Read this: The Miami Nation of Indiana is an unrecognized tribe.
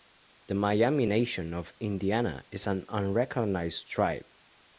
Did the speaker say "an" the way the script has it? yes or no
yes